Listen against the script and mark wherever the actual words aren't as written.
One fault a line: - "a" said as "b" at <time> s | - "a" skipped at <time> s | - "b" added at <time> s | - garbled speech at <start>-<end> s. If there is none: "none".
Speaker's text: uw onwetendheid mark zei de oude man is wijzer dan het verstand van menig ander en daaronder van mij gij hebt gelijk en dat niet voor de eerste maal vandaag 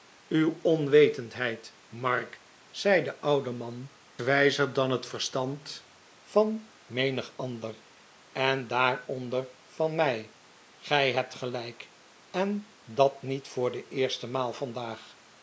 - "is" skipped at 3.9 s